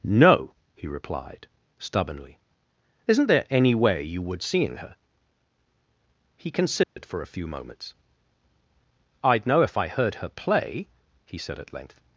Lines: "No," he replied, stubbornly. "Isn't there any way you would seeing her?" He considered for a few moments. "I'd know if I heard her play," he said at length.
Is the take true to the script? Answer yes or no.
yes